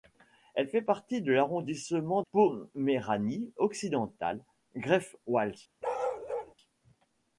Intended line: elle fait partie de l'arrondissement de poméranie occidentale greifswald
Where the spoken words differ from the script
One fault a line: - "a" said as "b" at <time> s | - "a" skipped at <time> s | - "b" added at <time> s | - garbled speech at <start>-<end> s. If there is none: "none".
- "de" skipped at 2.2 s